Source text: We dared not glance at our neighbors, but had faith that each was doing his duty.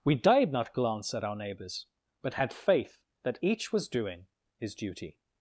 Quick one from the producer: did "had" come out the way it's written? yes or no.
yes